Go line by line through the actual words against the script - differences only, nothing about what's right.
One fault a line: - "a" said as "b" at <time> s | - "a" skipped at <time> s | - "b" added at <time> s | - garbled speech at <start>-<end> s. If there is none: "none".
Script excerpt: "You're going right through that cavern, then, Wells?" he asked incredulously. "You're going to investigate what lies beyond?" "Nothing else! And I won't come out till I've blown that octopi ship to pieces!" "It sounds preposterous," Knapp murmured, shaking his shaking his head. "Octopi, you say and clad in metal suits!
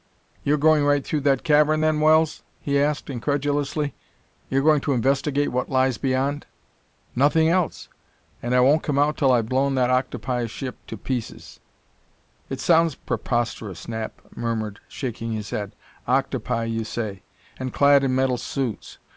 - "shaking his" skipped at 15.5 s